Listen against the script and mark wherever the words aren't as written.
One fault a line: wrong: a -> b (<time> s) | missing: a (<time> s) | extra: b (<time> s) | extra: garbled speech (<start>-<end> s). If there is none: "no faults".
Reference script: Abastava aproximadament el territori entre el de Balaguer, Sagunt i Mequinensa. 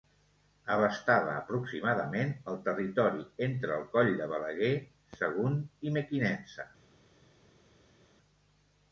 extra: coll (3.9 s)